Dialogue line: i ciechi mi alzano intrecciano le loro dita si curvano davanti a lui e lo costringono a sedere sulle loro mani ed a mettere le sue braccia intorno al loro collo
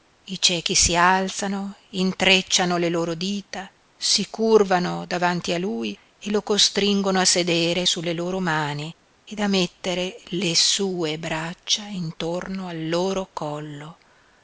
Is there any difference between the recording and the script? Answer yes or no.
yes